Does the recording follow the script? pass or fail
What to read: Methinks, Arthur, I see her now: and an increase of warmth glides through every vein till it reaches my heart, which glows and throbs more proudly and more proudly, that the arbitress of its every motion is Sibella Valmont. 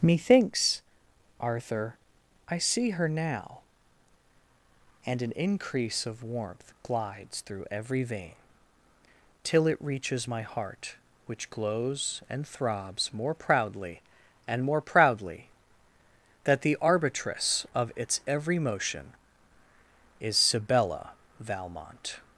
pass